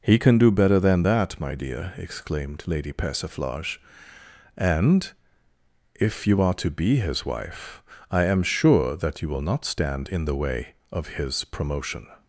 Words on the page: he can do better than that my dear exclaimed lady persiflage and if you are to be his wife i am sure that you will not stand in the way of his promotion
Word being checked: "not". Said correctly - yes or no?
yes